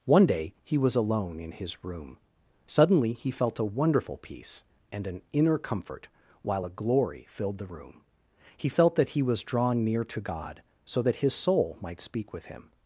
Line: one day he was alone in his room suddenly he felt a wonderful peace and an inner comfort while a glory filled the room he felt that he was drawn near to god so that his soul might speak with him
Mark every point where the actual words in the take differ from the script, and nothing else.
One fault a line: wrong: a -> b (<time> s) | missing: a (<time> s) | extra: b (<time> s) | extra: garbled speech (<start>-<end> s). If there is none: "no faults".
no faults